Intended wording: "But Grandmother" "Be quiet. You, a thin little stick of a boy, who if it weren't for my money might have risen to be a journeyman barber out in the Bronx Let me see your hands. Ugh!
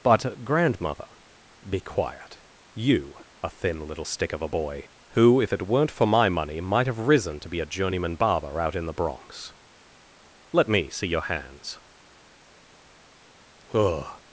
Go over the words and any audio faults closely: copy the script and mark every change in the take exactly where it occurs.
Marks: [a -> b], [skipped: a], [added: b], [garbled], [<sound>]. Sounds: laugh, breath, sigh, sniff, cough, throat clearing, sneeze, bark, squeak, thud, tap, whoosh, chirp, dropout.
"But Grandmother" "Be quiet. You, a thin little stick of a boy, who if it weren't for my money might have risen to be a journeyman barber out in the Bronx Let me see your hands. Ugh!